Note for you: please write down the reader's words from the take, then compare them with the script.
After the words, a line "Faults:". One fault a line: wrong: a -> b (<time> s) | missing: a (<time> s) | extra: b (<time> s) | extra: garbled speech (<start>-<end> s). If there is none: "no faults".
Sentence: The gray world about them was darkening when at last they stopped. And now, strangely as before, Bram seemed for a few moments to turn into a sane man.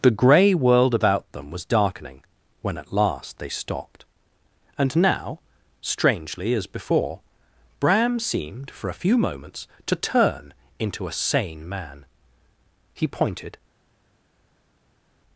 The gray world about them was darkening when at last they stopped. And now, strangely as before, Bram seemed for a few moments to turn into a sane man. He pointed
Faults:
extra: He pointed (12.9 s)